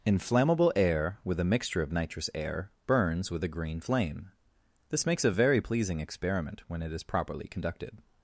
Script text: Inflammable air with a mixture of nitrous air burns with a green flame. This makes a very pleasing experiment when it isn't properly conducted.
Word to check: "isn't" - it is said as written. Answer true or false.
false